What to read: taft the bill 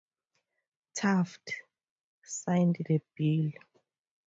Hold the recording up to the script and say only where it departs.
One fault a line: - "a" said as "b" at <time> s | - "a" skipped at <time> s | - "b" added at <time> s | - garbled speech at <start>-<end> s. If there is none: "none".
- "signed" added at 2.2 s